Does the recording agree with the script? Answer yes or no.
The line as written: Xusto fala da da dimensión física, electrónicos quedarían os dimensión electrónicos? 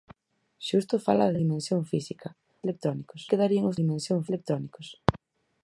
yes